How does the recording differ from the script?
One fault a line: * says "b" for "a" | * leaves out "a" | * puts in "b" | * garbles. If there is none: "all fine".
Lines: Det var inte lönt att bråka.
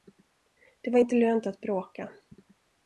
all fine